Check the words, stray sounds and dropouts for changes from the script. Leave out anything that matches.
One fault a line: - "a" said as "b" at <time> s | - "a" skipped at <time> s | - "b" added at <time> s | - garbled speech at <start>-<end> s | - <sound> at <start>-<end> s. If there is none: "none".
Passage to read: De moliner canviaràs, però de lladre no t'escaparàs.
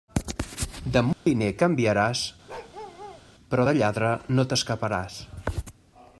- dropout at 1.1-1.3 s
- bark at 2.5-3.2 s